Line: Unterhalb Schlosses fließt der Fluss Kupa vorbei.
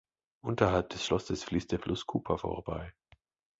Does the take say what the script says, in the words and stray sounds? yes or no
no